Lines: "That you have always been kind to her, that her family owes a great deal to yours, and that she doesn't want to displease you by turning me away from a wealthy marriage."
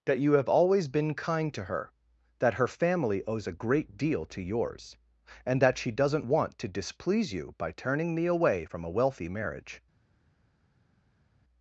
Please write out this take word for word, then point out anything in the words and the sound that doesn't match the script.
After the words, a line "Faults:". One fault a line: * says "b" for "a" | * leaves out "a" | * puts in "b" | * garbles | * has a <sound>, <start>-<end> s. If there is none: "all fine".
"That you have always been kind to her, that her family owes a great deal to yours, and that she doesn't want to displease you by turning me away from a wealthy marriage."
Faults:
all fine